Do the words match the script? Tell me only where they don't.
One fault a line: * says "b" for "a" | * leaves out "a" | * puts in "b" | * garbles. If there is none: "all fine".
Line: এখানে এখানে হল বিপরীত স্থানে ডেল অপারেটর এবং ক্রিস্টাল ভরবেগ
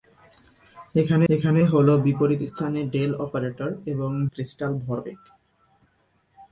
all fine